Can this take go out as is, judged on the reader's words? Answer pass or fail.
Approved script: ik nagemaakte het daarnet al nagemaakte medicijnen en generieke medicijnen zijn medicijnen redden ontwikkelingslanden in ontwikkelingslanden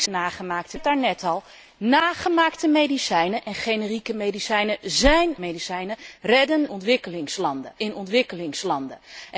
pass